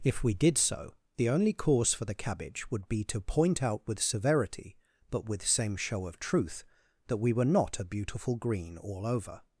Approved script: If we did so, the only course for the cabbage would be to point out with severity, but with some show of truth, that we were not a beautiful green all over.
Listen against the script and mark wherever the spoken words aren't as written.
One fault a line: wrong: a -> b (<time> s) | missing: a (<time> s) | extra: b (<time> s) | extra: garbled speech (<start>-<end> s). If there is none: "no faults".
wrong: some -> same (5.5 s)